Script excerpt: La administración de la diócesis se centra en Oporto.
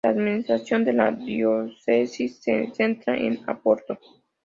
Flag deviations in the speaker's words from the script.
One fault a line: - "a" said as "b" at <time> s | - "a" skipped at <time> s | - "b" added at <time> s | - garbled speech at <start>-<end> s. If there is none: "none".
none